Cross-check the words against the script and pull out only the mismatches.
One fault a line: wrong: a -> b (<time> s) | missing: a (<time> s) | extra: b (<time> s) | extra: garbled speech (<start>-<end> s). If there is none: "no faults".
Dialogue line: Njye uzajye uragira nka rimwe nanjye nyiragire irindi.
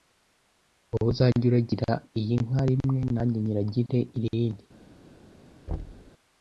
wrong: Njye -> Wowe (0.9 s)
extra: iyi (2.2 s)